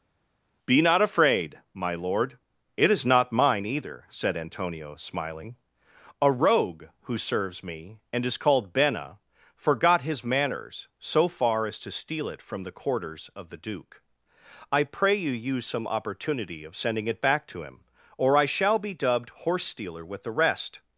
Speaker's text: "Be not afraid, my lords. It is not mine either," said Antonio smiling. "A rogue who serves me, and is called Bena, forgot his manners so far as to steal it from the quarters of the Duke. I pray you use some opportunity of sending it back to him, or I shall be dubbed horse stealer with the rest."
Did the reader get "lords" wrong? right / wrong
wrong